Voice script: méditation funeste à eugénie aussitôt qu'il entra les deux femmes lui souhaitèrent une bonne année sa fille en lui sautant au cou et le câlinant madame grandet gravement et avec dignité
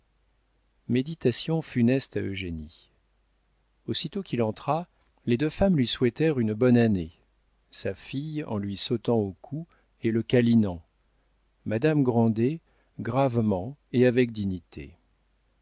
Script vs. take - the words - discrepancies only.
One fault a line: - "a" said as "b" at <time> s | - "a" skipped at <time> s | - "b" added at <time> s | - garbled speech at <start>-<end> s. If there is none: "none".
none